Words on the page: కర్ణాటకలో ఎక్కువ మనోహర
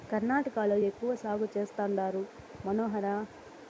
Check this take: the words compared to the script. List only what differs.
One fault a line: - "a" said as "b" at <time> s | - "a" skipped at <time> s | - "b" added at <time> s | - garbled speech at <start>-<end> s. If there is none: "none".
- "సాగు చేస్తండారు" added at 1.2 s